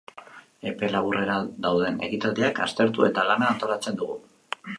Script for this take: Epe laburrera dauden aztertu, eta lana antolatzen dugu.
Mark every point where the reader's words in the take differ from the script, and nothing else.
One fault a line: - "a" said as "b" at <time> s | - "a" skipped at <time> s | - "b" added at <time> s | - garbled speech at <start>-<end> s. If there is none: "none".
- "ekitaldiak" added at 2.1 s